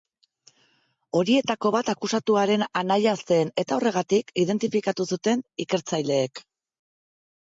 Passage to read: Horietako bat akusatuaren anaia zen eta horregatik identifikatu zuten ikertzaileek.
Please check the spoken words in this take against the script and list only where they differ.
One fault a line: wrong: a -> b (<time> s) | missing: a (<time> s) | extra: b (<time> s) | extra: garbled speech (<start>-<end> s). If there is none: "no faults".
no faults